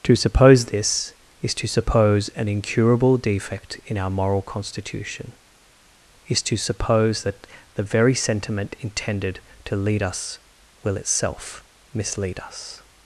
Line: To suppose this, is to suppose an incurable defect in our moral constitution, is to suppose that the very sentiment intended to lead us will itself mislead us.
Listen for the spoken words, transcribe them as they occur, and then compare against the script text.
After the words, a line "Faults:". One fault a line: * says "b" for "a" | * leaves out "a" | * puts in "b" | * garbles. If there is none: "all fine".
To suppose this, is to suppose an incurable defect in our moral constitution, is to suppose that the very sentiment intended to lead us will itself mislead us.
Faults:
all fine